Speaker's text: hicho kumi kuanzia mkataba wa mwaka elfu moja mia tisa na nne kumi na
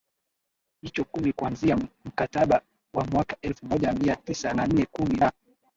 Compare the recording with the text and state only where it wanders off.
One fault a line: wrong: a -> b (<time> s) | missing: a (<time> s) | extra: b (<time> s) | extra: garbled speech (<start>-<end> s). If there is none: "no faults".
no faults